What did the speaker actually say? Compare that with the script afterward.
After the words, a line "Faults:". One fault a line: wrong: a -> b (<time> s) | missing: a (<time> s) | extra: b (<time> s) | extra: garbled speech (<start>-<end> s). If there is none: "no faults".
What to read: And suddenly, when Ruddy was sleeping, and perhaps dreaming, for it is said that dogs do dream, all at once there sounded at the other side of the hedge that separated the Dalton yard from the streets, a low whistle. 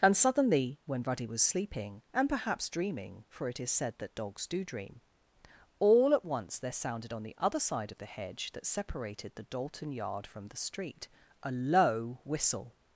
And suddenly, when Ruddy was sleeping, and perhaps dreaming, for it is said that dogs do dream, all at once there sounded on the other side of the hedge that separated the Dalton yard from the street, a low whistle.
Faults:
wrong: at -> on (7.1 s)
wrong: streets -> street (10.6 s)